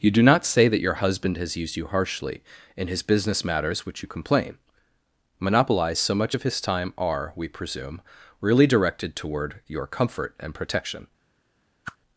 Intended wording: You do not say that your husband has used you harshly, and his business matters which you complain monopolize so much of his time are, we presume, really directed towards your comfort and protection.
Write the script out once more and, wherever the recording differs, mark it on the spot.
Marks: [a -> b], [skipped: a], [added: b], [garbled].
You do not say that your husband has used you harshly, [and -> in] his business matters which you complain monopolize so much of his time are, we presume, really directed [towards -> toward] your comfort and protection.